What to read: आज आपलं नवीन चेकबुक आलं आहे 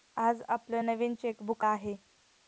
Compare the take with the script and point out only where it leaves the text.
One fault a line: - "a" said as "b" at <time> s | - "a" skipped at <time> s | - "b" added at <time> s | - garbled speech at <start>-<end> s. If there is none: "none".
- "आलं" skipped at 1.7 s